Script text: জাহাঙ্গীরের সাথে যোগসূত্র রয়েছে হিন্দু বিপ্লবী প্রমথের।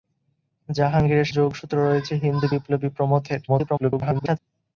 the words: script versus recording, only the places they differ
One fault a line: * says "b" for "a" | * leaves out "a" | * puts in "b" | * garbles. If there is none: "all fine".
* leaves out "সাথে"
* garbles